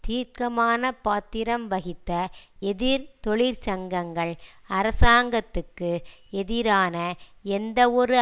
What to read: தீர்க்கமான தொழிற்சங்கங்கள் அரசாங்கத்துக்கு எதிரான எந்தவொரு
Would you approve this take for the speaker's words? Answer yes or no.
no